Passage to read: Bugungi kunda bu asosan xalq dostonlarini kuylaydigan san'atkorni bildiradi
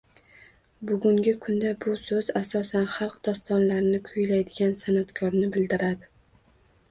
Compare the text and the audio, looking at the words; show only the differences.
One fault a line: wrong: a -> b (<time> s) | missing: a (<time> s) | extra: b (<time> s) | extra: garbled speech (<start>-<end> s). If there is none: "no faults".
extra: so'z (2.0 s)